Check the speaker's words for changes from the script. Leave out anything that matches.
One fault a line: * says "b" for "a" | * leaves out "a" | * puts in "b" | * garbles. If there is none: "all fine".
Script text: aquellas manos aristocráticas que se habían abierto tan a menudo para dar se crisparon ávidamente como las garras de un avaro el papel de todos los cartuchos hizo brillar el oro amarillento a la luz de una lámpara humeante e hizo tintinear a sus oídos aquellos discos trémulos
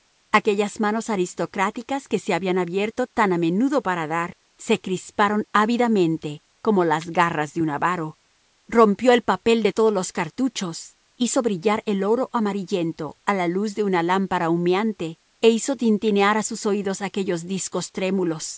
* puts in "rompió"